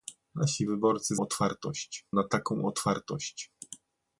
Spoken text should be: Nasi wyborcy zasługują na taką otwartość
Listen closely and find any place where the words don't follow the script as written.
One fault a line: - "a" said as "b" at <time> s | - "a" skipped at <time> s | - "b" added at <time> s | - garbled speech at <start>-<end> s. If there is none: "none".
- "zasługują" said as "otwartość" at 1.2 s